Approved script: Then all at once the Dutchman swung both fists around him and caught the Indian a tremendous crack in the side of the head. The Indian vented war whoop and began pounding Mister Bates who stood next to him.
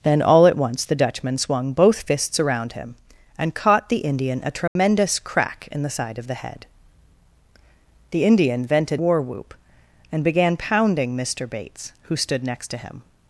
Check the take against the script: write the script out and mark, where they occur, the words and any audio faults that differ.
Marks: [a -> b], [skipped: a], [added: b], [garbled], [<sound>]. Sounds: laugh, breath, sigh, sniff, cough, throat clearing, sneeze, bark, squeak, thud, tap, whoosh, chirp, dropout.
Then all at once the Dutchman swung both fists around him and caught the Indian a tremendous [dropout] crack in the side of the head. The Indian vented war whoop and began pounding Mister Bates who stood next to him.